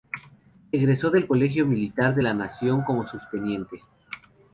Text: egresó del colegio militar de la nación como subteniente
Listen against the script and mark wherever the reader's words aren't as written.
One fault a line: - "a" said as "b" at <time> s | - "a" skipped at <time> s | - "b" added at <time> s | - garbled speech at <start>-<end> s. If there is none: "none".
none